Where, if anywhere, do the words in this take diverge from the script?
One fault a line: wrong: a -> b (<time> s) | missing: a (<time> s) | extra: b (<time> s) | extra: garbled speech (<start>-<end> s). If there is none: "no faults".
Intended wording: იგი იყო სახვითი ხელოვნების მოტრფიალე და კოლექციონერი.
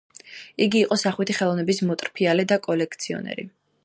no faults